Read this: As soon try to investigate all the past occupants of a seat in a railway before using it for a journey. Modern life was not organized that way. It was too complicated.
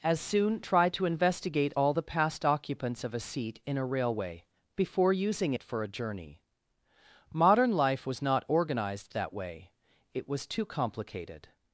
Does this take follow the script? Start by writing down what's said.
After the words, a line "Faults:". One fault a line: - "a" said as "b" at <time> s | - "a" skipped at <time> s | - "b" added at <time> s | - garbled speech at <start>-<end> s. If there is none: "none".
As soon try to investigate all the past occupants of a seat in a railway before using it for a journey. Modern life was not organized that way. It was too complicated.
Faults:
none